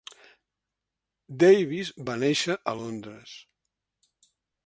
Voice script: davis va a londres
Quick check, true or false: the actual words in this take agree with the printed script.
false